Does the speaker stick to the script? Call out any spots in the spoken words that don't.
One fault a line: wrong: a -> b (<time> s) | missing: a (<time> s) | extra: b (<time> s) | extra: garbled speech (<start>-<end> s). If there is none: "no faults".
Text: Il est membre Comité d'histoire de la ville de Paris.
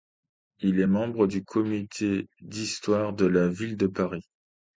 extra: du (1.2 s)